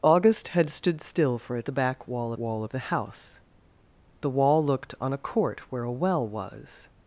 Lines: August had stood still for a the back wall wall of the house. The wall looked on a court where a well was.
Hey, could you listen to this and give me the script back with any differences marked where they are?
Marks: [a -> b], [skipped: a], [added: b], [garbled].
August had stood still for a the back wall wall of the house. The wall looked on a court where a well was.